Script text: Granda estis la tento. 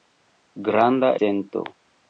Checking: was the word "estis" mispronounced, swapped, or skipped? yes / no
yes